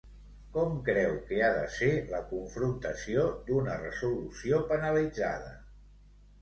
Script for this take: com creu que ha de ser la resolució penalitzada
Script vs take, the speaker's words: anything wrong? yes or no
yes